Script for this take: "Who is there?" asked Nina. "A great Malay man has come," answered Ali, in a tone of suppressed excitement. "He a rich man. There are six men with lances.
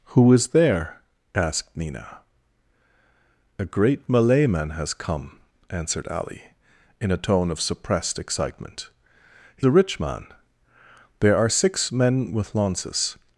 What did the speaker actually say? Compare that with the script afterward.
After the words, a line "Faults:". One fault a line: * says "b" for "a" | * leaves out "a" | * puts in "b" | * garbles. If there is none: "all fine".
"Who is there?" asked Nina. "A great Malay man has come," answered Ali, in a tone of suppressed excitement. "He a rich man. There are six men with lances.
Faults:
all fine